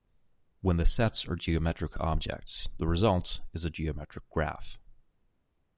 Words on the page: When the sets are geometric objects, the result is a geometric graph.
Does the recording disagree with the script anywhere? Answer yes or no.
no